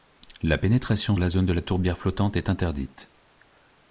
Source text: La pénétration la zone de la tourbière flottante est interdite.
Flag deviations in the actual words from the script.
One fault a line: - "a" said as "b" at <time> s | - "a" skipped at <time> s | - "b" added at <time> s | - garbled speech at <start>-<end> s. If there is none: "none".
none